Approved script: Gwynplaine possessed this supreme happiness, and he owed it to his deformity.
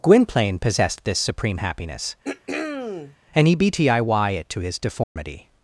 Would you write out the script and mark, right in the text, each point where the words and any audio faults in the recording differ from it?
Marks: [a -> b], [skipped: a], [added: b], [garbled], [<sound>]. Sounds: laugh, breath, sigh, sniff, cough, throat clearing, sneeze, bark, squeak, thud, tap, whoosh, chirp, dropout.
Gwynplaine possessed this supreme happiness, [throat clearing] and he [owed -> btiy] it to his deformity. [dropout]